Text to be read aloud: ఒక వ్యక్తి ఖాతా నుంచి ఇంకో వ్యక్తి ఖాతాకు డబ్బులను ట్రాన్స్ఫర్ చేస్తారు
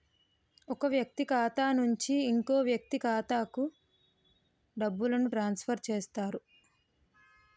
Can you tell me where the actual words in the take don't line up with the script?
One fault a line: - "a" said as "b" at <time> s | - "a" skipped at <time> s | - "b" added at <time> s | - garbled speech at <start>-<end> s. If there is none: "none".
none